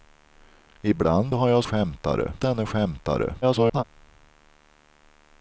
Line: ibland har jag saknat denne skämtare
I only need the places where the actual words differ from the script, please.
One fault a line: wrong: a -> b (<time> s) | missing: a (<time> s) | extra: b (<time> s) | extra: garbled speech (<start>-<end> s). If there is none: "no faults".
wrong: saknat -> skämtare (1.6 s)
extra: garbled speech (3.4-3.8 s)